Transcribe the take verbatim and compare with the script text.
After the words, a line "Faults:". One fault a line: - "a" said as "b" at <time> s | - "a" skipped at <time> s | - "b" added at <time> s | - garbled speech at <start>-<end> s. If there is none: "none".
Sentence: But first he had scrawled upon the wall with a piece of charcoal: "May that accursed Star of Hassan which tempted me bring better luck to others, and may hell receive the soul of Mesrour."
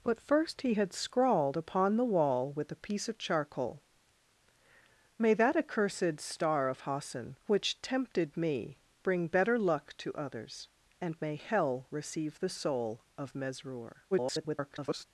But first he had scrawled upon the wall with a piece of charcoal: "May that accursed Star of Hassan which tempted me bring better luck to others, and may hell receive the soul of Mesrour." [garbled]
Faults:
- garbled speech at 14.1-15.0 s